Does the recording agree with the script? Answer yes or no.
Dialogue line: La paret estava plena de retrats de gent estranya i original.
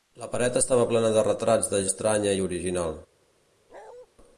no